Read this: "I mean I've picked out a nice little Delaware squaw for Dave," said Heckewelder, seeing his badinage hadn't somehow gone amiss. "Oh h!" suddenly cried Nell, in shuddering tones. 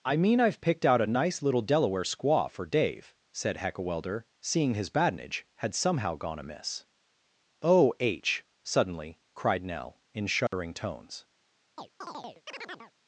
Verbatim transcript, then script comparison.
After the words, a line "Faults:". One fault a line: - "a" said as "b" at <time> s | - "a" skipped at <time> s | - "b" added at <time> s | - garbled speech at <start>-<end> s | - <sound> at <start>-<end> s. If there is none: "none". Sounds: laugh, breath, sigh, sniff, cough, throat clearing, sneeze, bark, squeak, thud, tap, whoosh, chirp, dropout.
"I mean I've picked out a nice little Delaware squaw for Dave," said Heckewelder, seeing his badinage had somehow gone amiss. "Oh h!" suddenly cried Nell, in shuddering tones.
Faults:
- "hadn't" said as "had" at 5.6 s
- dropout at 10.5-10.5 s
- chirp at 11.8-12.9 s